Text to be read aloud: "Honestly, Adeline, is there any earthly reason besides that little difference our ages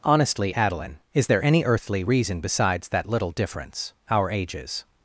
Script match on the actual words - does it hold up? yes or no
yes